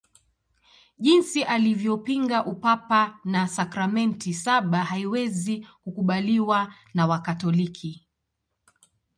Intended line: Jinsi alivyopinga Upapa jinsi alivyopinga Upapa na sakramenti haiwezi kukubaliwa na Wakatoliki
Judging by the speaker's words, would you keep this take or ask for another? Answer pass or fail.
fail